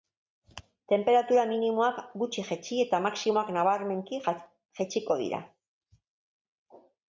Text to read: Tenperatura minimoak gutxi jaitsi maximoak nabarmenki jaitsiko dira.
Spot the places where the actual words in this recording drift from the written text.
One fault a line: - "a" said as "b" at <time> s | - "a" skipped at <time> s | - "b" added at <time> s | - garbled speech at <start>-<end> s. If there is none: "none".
- "eta" added at 2.9 s